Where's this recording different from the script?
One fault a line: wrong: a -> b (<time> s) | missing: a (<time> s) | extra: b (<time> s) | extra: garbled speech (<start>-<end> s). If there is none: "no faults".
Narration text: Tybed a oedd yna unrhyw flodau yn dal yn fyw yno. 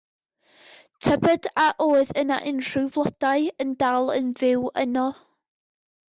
no faults